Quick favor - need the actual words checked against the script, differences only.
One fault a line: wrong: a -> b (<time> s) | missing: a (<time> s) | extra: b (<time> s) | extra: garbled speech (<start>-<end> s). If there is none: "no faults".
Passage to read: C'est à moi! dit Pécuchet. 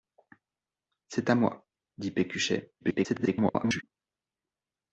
extra: garbled speech (2.8-3.8 s)